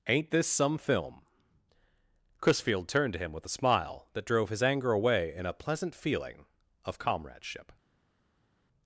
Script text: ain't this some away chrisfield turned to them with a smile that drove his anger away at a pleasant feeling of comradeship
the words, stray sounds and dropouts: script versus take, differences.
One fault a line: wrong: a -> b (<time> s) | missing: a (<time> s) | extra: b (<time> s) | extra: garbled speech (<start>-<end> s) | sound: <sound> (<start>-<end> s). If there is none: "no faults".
wrong: away -> film (0.8 s)
wrong: them -> him (3.2 s)
wrong: at -> in (5.3 s)